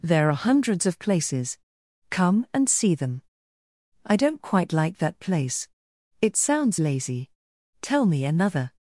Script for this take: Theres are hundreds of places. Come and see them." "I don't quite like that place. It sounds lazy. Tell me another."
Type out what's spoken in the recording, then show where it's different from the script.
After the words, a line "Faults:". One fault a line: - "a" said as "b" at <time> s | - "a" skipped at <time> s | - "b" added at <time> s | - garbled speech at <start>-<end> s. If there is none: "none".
There are hundreds of places. Come and see them." "I don't quite like that place. It sounds lazy. Tell me another."
Faults:
- "Theres" said as "There" at 0.0 s